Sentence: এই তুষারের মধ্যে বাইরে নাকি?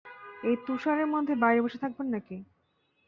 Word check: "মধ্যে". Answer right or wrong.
right